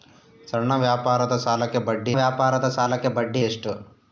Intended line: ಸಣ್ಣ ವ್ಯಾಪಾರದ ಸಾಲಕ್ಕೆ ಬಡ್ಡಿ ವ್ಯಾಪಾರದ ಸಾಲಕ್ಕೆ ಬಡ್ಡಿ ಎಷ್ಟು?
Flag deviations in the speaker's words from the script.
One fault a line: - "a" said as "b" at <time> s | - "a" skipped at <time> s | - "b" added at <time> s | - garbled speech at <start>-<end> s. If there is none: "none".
none